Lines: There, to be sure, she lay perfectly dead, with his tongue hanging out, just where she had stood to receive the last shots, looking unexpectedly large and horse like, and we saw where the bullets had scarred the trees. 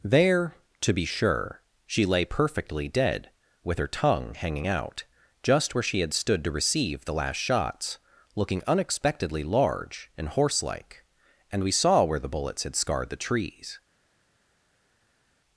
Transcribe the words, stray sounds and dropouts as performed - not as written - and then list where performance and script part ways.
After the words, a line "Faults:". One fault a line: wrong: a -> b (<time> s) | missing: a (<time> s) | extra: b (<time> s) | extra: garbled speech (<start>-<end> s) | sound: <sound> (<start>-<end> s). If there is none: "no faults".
There, to be sure, she lay perfectly dead, with her tongue hanging out, just where she had stood to receive the last shots, looking unexpectedly large and horse like, and we saw where the bullets had scarred the trees.
Faults:
wrong: his -> her (3.8 s)